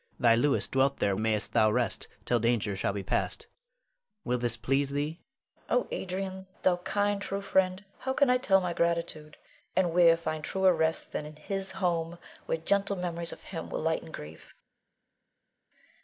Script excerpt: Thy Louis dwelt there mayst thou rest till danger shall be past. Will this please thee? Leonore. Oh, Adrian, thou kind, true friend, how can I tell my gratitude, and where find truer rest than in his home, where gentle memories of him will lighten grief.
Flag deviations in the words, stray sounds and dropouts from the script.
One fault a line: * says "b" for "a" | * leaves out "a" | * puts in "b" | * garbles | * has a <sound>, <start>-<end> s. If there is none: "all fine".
all fine